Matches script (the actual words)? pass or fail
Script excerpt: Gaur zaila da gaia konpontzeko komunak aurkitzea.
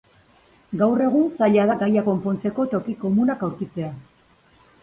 fail